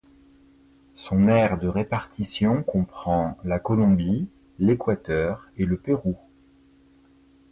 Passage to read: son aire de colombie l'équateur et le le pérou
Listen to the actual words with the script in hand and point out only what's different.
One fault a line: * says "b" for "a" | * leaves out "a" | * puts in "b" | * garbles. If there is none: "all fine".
* puts in "répartition comprend la"
* leaves out "le"